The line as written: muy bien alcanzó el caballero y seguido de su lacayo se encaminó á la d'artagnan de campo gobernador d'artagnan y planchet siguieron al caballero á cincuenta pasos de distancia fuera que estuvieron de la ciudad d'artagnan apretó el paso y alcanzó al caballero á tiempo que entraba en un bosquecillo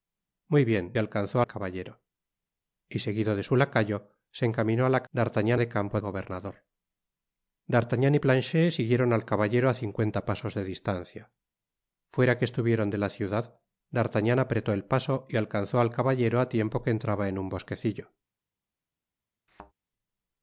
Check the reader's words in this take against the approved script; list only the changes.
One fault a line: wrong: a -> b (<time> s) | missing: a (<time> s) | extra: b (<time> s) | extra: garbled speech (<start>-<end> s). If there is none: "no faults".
no faults